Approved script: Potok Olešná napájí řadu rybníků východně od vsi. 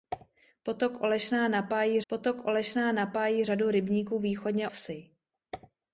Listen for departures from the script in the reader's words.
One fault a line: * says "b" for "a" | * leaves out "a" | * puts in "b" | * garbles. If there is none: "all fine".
* puts in "potok Olešná napájí"
* leaves out "od"